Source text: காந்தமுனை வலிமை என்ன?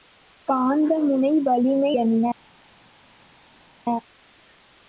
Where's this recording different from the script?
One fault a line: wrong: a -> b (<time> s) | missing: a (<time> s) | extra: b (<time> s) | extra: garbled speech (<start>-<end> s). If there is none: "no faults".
no faults